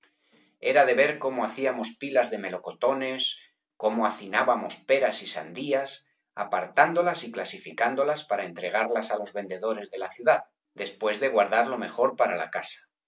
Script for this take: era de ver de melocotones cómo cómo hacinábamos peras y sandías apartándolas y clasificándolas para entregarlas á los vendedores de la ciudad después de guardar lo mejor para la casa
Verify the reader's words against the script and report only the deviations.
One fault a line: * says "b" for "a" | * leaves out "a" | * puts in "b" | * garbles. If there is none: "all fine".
* puts in "cómo hacíamos pilas"
* leaves out "cómo"